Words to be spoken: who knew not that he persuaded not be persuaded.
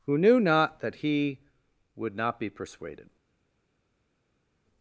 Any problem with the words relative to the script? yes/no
yes